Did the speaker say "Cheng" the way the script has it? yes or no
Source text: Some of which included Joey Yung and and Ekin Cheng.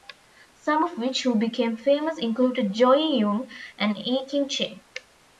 yes